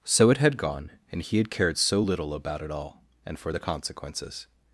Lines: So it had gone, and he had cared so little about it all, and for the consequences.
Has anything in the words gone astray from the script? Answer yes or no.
no